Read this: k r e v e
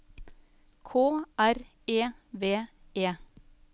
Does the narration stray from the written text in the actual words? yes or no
no